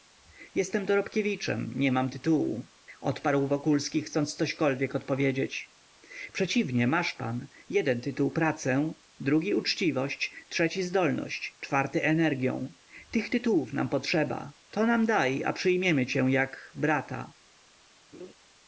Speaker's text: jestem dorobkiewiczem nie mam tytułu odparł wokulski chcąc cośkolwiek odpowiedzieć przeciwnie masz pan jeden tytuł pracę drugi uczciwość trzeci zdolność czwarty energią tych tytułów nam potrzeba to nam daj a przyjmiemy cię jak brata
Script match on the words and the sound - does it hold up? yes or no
no